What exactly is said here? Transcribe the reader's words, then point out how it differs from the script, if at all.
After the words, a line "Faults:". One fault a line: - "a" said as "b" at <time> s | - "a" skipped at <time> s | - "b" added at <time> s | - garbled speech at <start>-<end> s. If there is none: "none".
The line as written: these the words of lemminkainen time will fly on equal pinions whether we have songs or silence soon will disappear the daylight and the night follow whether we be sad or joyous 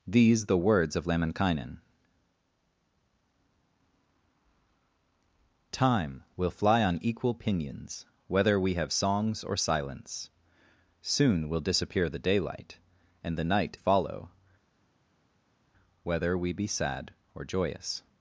these the words of lemminkainen time will fly on equal pinions whether we have songs or silence soon will disappear the daylight and the night follow whether we be sad or joyous
Faults:
none